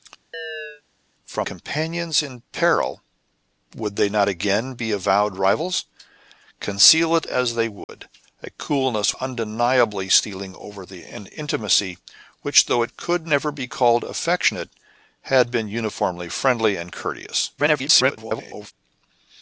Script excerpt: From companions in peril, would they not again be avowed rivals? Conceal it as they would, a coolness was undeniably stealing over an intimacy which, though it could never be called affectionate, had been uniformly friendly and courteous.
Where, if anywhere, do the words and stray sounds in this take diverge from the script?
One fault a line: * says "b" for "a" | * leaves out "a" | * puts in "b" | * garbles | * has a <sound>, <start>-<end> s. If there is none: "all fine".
* has a chirp, 0.3-0.8 s
* has a dropout, 7.8-7.9 s
* leaves out "was"
* garbles